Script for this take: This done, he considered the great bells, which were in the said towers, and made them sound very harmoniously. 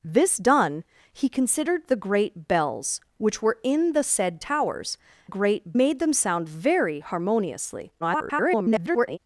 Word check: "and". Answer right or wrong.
wrong